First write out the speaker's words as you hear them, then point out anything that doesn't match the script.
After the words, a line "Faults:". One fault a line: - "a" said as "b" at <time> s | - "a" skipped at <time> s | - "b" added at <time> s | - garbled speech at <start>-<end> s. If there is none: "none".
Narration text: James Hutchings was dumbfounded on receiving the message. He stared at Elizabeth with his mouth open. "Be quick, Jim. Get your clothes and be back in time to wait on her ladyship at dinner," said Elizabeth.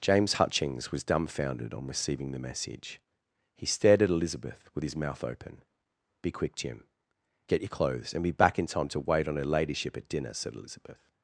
James Hutchings was dumbfounded on receiving the message. He stared at Elizabeth with his mouth open. "Be quick, Jim. Get your clothes and be back in time to wait on her ladyship at dinner," said Elizabeth.
Faults:
none